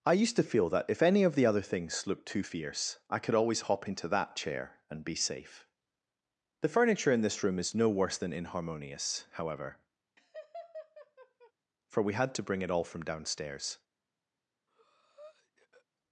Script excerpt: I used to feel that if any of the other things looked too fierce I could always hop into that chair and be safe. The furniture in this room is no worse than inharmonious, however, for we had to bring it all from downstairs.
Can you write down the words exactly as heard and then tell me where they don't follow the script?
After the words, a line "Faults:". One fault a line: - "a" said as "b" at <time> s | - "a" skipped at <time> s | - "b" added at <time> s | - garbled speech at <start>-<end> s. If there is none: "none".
I used to feel that if any of the other things looked too fierce I could always hop into that chair and be safe. The furniture in this room is no worse than inharmonious, however, for we had to bring it all from downstairs.
Faults:
none